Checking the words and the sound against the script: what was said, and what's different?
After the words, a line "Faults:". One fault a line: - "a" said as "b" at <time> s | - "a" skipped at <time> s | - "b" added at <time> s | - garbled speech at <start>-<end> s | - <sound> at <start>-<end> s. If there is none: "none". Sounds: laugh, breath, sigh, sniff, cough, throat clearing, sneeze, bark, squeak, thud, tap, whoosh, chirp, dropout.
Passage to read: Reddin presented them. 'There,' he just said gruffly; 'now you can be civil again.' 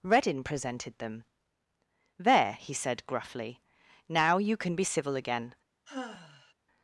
Reddin presented them. 'There,' he said gruffly; 'now you can be civil again.'
Faults:
- "just" skipped at 2.7 s
- sigh at 5.9-6.5 s